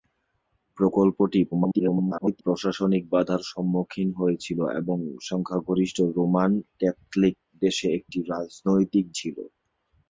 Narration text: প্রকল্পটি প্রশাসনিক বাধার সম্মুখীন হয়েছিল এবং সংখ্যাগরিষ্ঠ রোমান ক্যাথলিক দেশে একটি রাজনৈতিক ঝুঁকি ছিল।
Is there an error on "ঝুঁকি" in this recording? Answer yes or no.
yes